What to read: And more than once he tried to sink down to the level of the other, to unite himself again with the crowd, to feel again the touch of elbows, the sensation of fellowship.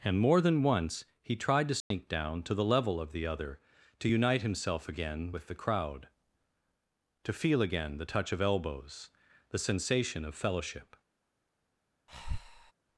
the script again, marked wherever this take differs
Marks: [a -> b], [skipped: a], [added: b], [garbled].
And more than once he tried to sink down to the level of the other, to unite himself again with the crowd, to feel again the touch of elbows, the sensation of fellowship.